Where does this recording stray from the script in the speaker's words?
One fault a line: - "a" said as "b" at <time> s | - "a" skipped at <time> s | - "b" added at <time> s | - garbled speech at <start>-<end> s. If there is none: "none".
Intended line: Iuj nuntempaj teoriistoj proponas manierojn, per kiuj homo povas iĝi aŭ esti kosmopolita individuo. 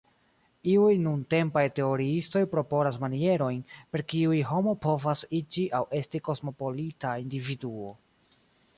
none